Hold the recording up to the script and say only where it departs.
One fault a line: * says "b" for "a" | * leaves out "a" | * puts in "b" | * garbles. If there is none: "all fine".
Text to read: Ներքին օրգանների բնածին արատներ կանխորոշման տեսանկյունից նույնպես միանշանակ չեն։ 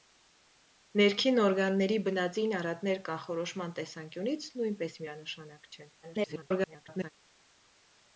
* garbles